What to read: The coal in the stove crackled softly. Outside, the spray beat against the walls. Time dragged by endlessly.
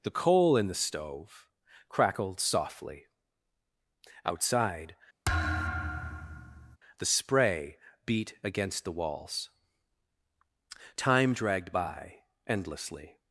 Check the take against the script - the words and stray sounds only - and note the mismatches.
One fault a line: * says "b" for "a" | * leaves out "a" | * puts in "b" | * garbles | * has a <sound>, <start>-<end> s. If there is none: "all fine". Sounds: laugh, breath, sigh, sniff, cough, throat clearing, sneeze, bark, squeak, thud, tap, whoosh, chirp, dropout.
* has a thud, 5.2-6.8 s